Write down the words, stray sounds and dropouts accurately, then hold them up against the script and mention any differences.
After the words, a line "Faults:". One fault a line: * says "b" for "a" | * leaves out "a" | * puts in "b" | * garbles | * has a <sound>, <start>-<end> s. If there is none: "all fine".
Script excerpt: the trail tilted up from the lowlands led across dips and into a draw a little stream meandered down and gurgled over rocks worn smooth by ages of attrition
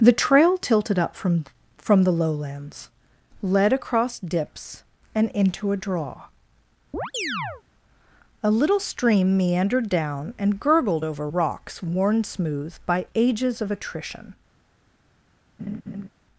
the trail tilted up from from the lowlands led across dips and into a draw a little stream meandered down and gurgled over rocks worn smooth by ages of attrition
Faults:
* puts in "from"
* has a chirp, 6.9-7.6 s
* has a laugh, 15.6-16.1 s